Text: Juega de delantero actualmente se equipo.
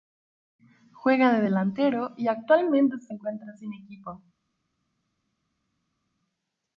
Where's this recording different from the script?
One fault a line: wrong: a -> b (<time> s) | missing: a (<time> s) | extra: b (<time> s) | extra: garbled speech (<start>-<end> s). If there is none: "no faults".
extra: y (2.1 s)
extra: encuentra sin (3.1 s)